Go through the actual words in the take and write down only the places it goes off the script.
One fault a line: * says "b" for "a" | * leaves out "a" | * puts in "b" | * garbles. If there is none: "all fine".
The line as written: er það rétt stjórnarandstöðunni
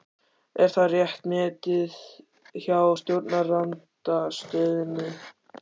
* puts in "metið hjá"